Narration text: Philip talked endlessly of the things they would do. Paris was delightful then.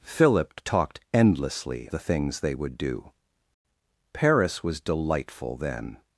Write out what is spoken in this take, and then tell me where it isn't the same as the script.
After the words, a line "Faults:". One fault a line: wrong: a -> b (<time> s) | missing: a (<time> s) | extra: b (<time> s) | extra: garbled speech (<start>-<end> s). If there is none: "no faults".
Philip talked endlessly the things they would do. Paris was delightful then.
Faults:
missing: of (1.9 s)